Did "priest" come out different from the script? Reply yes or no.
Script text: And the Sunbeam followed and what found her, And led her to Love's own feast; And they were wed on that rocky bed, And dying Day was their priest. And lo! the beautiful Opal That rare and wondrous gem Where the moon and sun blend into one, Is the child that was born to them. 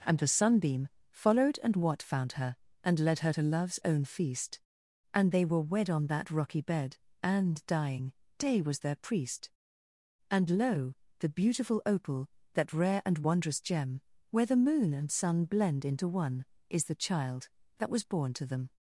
no